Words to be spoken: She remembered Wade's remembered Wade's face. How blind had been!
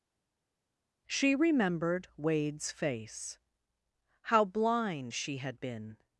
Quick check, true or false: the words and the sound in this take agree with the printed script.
false